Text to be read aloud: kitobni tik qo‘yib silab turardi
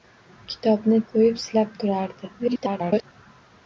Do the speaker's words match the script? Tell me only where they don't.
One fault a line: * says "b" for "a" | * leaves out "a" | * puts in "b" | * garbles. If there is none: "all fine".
* leaves out "tik"
* garbles